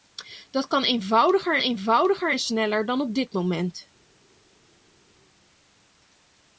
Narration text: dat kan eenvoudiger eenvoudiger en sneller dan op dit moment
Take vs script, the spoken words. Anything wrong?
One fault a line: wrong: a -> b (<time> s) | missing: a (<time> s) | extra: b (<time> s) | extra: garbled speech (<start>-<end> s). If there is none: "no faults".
no faults